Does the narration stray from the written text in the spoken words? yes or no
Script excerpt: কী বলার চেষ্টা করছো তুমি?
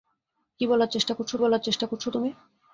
yes